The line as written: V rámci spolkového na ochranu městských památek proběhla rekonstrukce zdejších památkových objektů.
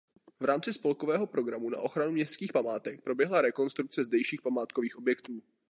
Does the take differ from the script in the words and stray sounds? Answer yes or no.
yes